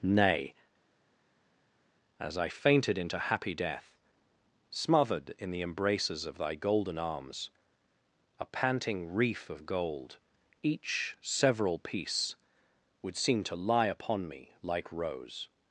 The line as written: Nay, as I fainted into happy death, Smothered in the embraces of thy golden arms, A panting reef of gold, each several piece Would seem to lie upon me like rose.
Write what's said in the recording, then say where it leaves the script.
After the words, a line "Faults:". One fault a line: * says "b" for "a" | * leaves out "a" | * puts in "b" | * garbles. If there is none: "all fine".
Nay, as I fainted into happy death, Smothered in the embraces of thy golden arms, A panting reef of gold, each several piece Would seem to lie upon me like rose.
Faults:
all fine